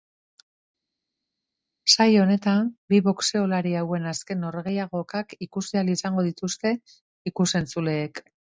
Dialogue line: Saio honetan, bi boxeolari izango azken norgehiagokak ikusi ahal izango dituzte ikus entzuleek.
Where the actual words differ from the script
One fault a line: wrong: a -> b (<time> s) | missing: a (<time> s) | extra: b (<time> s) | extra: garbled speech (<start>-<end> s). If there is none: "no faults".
wrong: izango -> hauen (3.8 s)